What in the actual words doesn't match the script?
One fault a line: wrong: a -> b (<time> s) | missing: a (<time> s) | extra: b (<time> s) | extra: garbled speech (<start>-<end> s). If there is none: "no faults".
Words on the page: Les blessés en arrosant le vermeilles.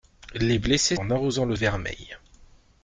no faults